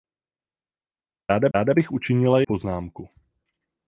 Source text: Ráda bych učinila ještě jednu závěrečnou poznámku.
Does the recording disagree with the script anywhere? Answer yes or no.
yes